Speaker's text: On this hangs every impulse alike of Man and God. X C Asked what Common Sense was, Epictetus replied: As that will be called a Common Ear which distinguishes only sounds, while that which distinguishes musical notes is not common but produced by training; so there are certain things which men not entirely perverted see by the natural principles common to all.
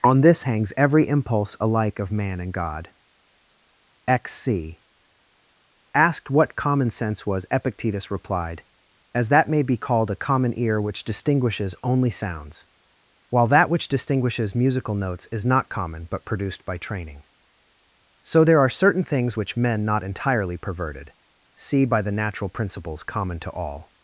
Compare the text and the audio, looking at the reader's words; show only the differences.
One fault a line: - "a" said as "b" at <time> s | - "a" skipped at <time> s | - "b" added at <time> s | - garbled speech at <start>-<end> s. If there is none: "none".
- "will" said as "may" at 9.5 s